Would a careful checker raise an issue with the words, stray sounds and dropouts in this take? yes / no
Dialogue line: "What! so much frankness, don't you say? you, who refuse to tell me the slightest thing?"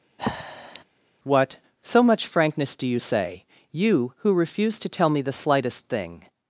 yes